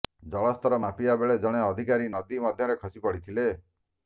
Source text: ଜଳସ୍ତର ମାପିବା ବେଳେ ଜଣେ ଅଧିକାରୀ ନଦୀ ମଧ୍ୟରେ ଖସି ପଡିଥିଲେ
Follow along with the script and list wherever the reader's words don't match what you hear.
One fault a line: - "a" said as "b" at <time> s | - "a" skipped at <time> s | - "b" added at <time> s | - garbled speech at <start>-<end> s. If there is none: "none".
none